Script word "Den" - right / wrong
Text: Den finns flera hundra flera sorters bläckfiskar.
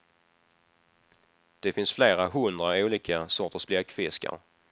wrong